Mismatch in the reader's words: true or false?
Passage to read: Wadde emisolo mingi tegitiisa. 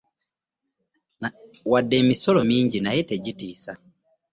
true